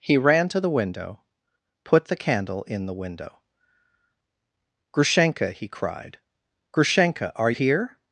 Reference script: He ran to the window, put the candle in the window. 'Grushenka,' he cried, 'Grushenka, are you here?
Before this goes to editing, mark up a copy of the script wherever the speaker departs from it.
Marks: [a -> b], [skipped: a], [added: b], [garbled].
He ran to the window, put the candle in the window. 'Grushenka,' he cried, 'Grushenka, are [skipped: you] here?